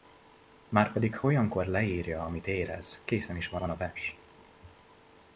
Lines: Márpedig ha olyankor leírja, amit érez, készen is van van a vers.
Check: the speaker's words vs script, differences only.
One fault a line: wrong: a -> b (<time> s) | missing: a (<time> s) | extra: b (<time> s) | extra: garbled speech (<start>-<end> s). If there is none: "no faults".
no faults